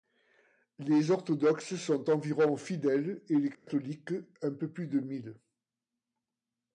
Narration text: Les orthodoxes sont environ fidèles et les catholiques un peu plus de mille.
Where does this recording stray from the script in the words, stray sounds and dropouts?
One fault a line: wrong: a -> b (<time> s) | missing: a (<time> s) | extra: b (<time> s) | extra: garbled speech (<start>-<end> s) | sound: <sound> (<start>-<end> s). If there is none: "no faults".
sound: dropout (3.5-3.7 s)